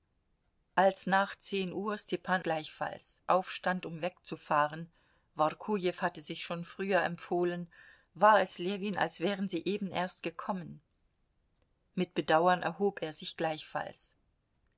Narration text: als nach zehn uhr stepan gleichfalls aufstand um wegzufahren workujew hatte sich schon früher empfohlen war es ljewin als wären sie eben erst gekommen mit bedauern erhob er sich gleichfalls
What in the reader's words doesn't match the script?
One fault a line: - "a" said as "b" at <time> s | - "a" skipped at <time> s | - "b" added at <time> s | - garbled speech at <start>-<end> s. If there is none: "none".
none